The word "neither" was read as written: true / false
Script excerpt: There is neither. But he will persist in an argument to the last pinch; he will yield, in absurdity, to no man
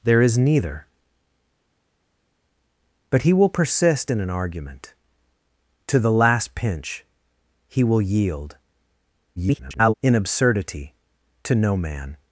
true